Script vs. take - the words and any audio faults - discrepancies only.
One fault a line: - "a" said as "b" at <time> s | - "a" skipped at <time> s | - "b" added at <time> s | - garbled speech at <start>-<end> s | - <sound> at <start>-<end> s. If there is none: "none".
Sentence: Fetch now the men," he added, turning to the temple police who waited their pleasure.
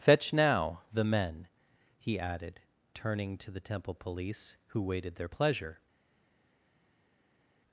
none